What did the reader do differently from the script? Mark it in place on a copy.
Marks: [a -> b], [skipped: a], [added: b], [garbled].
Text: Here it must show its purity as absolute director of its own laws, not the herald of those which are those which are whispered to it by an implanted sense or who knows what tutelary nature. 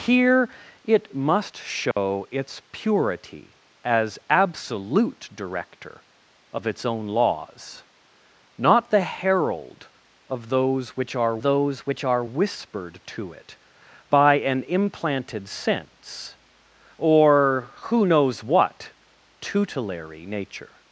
Here it must show its purity as absolute director of its own laws, not the herald of those which are those which are whispered to it by an implanted sense or who knows what tutelary nature.